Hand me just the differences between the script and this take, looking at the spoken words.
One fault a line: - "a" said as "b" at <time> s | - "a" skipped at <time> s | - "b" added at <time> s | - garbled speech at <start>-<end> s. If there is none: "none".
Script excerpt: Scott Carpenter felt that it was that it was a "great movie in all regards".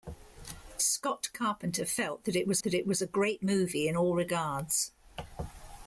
none